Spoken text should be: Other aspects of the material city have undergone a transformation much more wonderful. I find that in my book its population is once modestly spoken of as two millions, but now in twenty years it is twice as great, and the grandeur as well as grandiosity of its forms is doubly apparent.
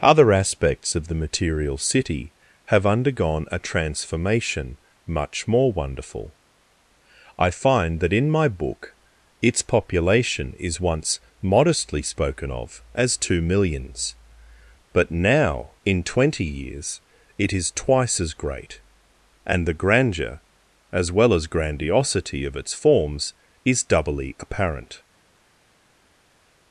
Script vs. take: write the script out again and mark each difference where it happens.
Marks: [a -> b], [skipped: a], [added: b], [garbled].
Other aspects of the material city have undergone a transformation much more wonderful. I find that in my book its population is once modestly spoken of as two millions, but now in twenty years it is twice as great, and the grandeur as well as grandiosity of its forms is doubly apparent.